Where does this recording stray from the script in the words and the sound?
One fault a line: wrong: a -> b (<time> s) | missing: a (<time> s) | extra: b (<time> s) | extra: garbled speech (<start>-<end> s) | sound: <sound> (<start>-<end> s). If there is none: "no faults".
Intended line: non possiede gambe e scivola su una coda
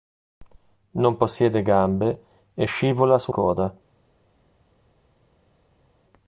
missing: una (3.3 s)